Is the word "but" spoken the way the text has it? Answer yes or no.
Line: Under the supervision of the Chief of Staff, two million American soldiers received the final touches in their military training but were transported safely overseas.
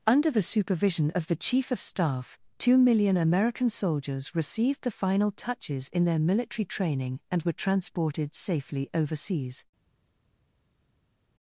no